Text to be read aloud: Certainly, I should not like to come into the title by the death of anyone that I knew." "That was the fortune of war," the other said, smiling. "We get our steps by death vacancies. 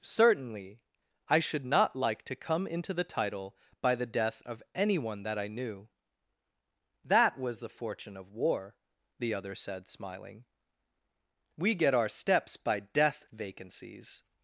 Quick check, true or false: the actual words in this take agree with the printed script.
true